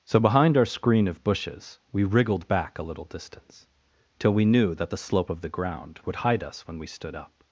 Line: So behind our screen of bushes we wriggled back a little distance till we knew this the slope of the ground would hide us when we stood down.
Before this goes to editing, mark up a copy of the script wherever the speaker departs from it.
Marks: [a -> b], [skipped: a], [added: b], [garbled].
So behind our screen of bushes we wriggled back a little distance till we knew [this -> that] the slope of the ground would hide us when we stood [down. -> up]